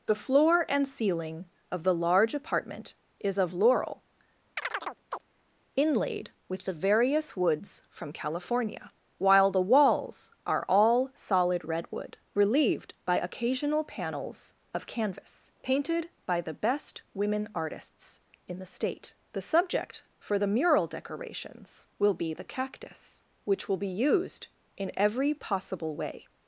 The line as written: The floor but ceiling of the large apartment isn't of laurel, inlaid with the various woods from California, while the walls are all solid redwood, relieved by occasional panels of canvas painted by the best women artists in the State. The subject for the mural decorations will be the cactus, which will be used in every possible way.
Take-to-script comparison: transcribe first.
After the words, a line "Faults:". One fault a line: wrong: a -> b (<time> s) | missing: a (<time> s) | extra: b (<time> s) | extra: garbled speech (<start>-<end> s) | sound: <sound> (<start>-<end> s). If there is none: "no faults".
The floor and ceiling of the large apartment is of laurel, inlaid with the various woods from California, while the walls are all solid redwood, relieved by occasional panels of canvas painted by the best women artists in the State. The subject for the mural decorations will be the cactus, which will be used in every possible way.
Faults:
wrong: but -> and (0.7 s)
wrong: isn't -> is (3.2 s)
sound: chirp (4.6-5.2 s)